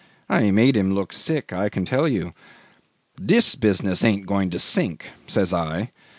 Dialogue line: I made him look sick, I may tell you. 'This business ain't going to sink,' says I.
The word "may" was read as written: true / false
false